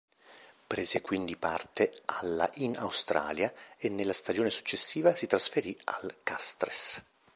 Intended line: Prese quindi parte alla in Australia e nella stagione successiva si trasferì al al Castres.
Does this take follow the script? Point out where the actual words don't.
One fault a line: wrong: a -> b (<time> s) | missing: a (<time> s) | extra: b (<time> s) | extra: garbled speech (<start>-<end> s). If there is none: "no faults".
missing: al (6.1 s)